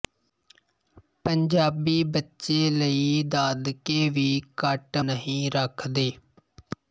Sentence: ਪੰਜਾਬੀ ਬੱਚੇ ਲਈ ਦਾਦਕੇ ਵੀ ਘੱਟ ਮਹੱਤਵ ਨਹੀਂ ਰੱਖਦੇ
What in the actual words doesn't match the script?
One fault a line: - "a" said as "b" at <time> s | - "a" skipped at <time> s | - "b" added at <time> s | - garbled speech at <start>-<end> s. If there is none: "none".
- "ਮਹੱਤਵ" skipped at 5.0 s